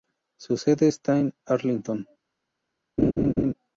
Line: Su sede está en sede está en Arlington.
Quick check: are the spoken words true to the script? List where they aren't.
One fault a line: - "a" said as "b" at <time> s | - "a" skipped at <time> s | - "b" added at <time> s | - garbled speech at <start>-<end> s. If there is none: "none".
- "sede está en" skipped at 1.3 s